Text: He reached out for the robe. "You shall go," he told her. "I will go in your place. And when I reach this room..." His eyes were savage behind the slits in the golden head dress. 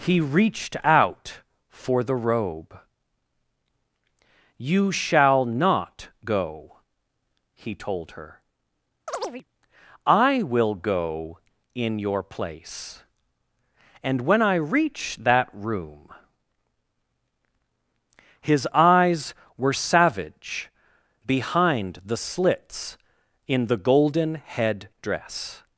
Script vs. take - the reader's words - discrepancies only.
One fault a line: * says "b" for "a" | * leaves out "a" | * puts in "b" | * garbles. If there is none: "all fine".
* puts in "not"
* says "that" for "this"